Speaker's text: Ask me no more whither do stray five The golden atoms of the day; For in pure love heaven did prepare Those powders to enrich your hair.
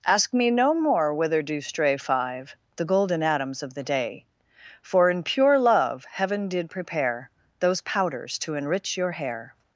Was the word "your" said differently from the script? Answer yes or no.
no